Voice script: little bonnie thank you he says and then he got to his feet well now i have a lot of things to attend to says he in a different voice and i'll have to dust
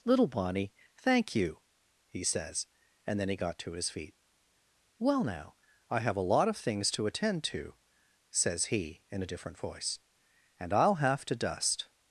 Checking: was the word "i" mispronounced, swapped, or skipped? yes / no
no